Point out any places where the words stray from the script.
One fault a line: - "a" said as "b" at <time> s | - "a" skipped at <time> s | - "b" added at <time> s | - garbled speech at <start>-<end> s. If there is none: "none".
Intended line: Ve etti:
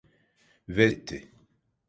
none